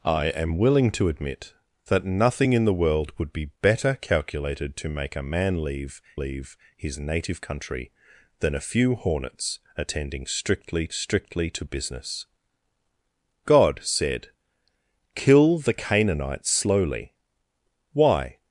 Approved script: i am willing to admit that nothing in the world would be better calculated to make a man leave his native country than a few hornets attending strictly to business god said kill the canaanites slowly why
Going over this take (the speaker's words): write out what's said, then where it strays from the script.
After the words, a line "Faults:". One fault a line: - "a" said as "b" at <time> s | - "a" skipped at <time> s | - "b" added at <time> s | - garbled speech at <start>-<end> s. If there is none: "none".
i am willing to admit that nothing in the world would be better calculated to make a man leave leave his native country than a few hornets attending strictly strictly to business god said kill the canaanites slowly why
Faults:
- "leave" added at 6.2 s
- "strictly" added at 10.9 s